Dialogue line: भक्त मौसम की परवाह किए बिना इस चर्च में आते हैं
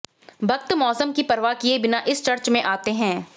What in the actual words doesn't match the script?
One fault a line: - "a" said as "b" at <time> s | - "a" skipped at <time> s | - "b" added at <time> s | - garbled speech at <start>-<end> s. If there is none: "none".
none